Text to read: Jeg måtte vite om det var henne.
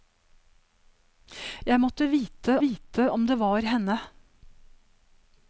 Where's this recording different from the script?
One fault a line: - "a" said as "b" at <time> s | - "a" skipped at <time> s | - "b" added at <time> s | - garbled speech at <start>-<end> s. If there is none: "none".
- "vite" added at 2.6 s